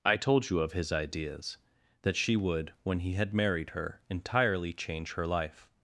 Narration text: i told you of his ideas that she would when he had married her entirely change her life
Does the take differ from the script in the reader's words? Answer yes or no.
no